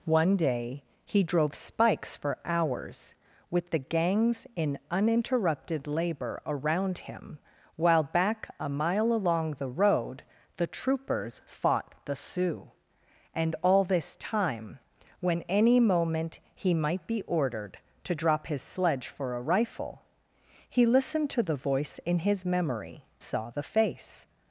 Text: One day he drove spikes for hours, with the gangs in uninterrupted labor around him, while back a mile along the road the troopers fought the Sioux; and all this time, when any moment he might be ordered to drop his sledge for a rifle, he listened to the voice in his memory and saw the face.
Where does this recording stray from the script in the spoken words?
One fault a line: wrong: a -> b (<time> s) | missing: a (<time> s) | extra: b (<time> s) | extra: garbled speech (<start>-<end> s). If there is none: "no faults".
missing: and (23.1 s)